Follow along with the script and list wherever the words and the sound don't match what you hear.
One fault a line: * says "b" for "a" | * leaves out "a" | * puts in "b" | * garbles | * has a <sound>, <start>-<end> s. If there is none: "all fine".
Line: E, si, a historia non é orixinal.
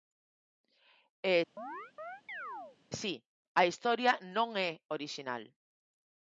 * has a chirp, 1.6-2.8 s